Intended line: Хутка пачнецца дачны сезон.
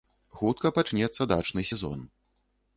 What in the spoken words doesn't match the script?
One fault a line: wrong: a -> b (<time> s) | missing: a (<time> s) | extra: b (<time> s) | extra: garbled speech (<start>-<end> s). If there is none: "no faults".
no faults